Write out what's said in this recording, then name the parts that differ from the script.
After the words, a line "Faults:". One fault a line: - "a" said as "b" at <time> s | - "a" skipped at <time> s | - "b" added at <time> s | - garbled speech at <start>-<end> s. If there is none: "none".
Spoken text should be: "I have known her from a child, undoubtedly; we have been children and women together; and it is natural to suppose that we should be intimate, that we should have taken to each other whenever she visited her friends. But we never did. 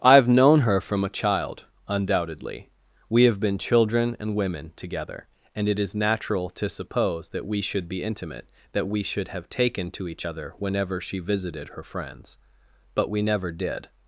"I have known her from a child, undoubtedly; we have been children and women together; and it is natural to suppose that we should be intimate, that we should have taken to each other whenever she visited her friends. But we never did.
Faults:
none